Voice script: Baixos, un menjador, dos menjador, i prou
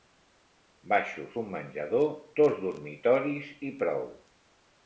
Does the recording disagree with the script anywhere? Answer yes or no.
yes